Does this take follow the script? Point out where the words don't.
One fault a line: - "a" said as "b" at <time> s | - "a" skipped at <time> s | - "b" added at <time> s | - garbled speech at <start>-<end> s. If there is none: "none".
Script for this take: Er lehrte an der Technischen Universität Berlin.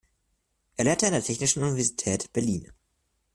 none